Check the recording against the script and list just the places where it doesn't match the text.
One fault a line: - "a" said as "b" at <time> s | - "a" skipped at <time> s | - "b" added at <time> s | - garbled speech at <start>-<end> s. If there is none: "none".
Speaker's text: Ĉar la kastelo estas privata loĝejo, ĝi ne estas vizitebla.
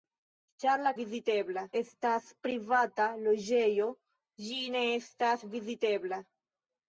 - "kastelo" said as "vizitebla" at 1.0 s